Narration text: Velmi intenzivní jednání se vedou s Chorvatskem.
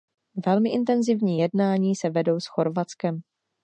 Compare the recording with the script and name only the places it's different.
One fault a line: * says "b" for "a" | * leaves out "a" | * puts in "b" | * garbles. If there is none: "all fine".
all fine